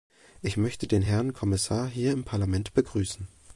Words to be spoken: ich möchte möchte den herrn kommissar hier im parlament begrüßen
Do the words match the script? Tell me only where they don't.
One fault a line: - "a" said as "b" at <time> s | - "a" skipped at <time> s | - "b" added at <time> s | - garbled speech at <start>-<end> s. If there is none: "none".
- "möchte" skipped at 0.9 s